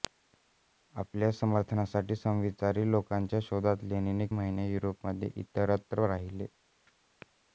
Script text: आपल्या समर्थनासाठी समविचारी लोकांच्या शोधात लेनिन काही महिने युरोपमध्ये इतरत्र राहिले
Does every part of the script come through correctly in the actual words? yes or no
no